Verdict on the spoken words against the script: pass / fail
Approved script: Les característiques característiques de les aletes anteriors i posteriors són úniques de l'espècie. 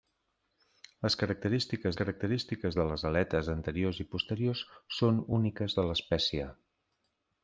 pass